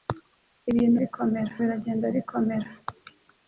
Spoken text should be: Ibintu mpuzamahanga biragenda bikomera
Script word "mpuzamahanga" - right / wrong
wrong